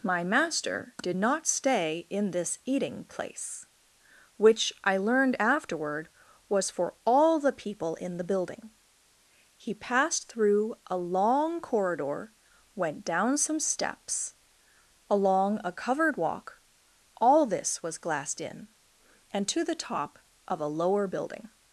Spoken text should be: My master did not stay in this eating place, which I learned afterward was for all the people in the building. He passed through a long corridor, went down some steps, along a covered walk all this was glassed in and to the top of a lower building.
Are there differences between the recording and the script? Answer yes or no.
no